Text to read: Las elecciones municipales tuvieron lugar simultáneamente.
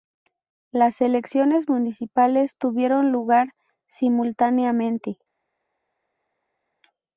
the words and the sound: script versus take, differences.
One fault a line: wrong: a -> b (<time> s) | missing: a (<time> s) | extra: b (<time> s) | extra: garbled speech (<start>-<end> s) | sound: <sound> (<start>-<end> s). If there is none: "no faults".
no faults